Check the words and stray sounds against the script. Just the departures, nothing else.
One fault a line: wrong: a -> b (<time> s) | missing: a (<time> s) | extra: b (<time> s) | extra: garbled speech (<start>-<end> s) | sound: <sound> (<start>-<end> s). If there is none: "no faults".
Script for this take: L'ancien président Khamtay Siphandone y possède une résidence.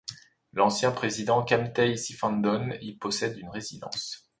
no faults